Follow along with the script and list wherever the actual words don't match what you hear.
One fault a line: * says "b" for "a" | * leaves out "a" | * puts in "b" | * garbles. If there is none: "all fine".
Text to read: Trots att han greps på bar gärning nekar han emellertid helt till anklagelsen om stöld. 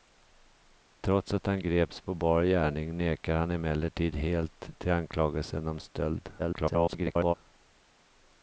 * garbles